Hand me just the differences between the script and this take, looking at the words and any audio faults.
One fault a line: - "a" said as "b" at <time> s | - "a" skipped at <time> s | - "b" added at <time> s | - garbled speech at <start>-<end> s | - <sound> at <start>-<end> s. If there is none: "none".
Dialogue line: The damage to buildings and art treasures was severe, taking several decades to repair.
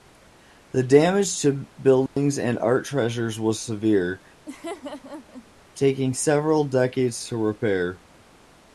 - dropout at 2.1-2.2 s
- laugh at 4.5-5.5 s